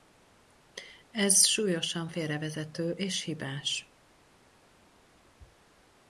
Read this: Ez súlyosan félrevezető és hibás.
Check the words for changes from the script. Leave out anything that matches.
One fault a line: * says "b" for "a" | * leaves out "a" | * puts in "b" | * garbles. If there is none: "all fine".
all fine